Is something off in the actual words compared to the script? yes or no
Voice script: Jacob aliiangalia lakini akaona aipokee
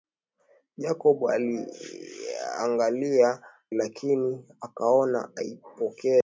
no